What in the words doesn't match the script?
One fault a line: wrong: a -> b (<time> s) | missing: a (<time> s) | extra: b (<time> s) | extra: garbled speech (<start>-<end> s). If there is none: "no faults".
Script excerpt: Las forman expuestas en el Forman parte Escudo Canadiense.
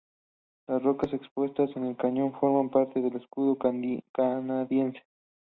wrong: forman -> rocas (0.8 s)
extra: Cañón (1.9 s)
extra: del (3.0 s)